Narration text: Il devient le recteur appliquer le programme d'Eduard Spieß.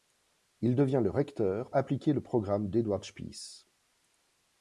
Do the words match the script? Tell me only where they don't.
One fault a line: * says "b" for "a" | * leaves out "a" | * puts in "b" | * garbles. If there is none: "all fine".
all fine